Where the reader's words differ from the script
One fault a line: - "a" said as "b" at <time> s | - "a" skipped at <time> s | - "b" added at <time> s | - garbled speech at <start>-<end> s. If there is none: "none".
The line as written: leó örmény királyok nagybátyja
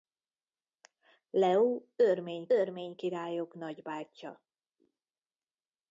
- "örmény" added at 2.5 s